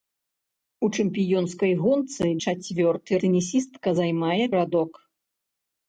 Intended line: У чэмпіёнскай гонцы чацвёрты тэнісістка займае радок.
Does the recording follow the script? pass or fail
pass